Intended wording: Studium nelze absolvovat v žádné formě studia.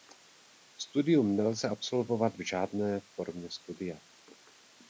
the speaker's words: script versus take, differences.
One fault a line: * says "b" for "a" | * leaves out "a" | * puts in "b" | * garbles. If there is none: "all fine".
all fine